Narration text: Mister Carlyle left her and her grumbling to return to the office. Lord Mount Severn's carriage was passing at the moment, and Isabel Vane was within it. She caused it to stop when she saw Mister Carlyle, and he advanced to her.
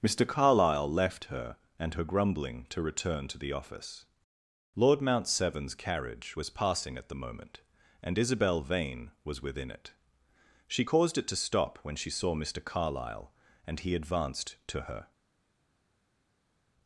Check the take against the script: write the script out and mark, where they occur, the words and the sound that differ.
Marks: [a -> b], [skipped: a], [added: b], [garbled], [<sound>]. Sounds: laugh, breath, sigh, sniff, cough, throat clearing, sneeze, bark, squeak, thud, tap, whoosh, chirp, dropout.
Mister Carlyle left her and her grumbling to return to the office. Lord Mount Severn's carriage was passing at the moment, and Isabel Vane was within it. She caused it to stop when she saw Mister Carlyle, and he advanced to her.